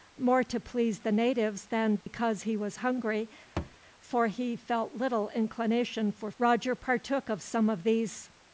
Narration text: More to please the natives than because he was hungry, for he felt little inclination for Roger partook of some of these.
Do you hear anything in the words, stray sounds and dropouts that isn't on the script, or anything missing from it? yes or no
yes